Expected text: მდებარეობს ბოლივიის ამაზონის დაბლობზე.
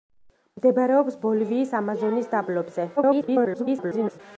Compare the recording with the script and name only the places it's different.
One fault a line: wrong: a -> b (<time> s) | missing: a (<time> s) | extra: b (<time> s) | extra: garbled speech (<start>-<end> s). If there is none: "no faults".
extra: garbled speech (3.0-4.2 s)